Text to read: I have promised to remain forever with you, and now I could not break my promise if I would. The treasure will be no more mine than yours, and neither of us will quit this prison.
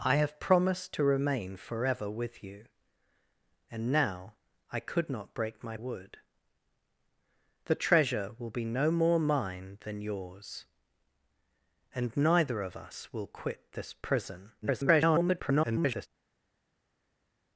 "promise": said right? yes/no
no